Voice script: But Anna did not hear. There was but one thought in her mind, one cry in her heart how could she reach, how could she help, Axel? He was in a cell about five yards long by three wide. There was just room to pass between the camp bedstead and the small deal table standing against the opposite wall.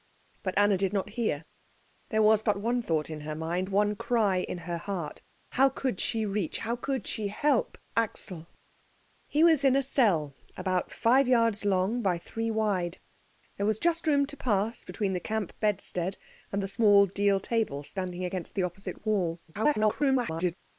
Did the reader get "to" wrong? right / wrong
right